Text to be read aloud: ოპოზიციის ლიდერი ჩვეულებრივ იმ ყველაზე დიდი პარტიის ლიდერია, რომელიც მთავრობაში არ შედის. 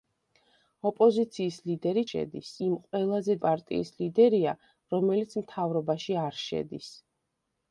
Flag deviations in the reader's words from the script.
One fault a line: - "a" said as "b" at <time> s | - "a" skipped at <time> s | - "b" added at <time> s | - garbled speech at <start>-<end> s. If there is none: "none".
- "ჩვეულებრივ" said as "შედის" at 2.1 s
- "დიდი" skipped at 3.4 s